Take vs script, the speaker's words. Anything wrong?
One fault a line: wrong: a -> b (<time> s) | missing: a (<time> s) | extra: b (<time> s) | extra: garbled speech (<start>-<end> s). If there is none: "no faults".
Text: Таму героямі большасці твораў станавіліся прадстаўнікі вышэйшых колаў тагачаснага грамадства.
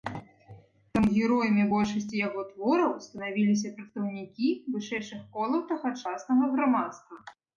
extra: яго (2.3 s)